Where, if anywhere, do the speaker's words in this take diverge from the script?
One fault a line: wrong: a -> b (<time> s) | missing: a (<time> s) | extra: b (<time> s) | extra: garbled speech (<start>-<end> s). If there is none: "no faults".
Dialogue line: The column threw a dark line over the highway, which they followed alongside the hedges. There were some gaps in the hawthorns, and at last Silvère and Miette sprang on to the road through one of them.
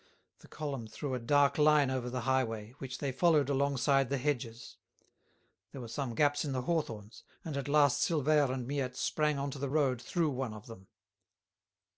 no faults